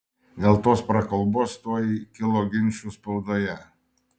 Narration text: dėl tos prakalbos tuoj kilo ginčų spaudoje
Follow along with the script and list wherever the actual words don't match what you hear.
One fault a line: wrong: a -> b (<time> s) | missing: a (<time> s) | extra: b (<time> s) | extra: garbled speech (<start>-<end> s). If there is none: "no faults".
no faults